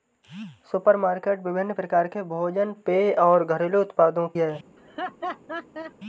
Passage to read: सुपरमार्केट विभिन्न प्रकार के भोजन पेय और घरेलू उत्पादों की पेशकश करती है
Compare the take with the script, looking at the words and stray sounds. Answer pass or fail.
fail